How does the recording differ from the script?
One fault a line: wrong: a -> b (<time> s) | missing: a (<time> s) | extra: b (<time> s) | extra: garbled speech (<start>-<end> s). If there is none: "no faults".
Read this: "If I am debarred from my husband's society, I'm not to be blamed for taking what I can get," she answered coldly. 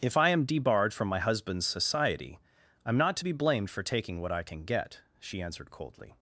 no faults